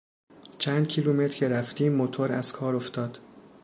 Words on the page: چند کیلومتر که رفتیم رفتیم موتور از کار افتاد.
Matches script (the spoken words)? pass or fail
fail